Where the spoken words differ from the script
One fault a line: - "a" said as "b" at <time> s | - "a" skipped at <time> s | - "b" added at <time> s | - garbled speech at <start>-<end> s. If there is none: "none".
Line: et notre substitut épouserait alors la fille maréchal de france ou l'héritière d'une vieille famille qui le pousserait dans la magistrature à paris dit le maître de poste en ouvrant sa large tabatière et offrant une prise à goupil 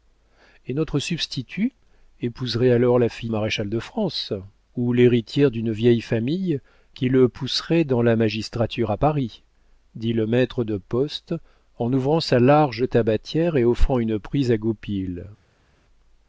none